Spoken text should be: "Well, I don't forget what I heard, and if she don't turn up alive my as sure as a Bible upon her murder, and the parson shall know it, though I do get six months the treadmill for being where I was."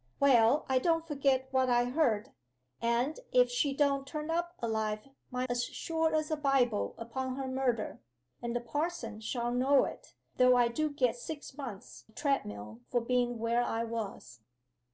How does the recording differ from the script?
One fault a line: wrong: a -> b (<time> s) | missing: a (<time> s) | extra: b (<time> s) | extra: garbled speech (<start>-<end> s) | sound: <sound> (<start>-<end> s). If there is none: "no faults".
no faults